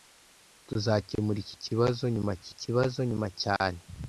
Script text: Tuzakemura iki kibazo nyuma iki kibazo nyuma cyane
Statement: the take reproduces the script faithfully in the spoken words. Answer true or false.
true